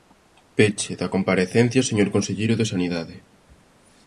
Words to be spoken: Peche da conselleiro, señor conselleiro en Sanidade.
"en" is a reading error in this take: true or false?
true